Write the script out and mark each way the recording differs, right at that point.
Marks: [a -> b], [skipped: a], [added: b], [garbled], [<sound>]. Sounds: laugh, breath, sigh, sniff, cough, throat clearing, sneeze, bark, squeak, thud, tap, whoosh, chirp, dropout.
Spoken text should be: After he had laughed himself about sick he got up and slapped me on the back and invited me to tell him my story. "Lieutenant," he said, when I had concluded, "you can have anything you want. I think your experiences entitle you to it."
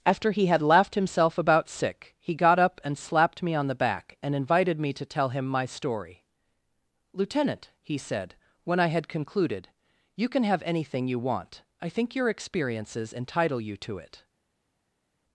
After he had laughed himself about sick he got up and slapped me on the back and invited me to tell him my story. "Lieutenant," he said, when I had concluded, "you can have anything you want. I think your experiences entitle you to it."